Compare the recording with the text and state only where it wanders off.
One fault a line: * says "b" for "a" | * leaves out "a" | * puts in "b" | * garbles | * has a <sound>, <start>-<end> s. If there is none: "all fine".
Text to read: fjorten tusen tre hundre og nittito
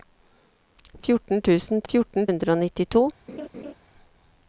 * says "fjorten" for "tre"
* has a laugh, 3.3-3.7 s